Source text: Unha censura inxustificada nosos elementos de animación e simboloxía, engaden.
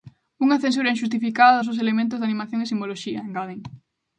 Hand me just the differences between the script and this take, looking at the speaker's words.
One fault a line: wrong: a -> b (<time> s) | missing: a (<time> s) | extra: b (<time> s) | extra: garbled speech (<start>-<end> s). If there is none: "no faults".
no faults